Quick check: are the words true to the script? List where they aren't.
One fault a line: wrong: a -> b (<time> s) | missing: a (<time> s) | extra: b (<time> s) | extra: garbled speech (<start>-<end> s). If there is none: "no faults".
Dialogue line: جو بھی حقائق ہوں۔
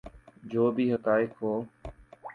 no faults